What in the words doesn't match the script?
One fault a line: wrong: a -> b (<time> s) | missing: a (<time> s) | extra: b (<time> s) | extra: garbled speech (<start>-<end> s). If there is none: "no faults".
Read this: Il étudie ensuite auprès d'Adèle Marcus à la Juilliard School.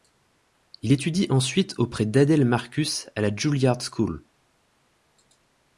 no faults